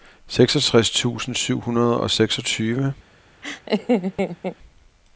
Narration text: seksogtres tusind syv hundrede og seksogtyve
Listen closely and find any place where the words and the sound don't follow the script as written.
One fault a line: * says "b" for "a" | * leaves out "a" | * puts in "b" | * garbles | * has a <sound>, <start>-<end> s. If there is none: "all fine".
* has a laugh, 3.4-4.6 s